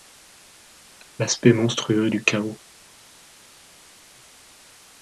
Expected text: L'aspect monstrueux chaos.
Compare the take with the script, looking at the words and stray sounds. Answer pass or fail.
fail